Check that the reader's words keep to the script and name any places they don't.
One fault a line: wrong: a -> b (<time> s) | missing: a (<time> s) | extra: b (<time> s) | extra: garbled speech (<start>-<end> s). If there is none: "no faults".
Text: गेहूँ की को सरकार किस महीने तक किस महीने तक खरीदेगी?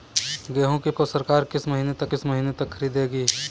no faults